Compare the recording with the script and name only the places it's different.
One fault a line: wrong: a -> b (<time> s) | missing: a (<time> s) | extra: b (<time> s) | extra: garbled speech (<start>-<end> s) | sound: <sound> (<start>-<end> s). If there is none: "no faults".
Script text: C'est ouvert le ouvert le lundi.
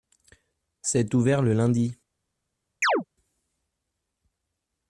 missing: ouvert le (1.5 s)
sound: chirp (2.8-3.0 s)